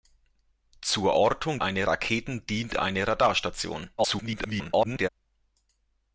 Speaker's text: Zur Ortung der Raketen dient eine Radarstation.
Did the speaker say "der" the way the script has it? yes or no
no